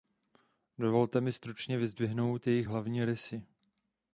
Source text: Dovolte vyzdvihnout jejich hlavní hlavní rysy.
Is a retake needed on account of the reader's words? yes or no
yes